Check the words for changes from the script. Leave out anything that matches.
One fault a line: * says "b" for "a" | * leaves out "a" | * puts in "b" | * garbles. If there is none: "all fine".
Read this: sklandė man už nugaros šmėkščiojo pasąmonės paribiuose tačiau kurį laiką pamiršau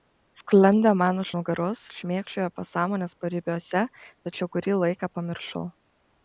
all fine